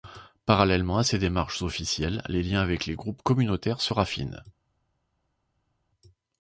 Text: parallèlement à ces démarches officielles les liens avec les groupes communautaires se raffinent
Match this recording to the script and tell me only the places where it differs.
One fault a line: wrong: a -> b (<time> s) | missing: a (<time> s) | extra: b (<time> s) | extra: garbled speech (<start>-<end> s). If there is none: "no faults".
no faults